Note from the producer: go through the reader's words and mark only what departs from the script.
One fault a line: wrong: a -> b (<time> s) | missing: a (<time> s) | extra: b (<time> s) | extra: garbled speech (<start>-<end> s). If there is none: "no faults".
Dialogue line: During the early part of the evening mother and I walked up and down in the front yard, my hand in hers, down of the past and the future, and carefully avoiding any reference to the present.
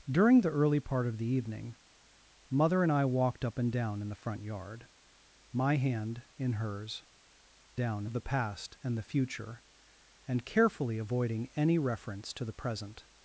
no faults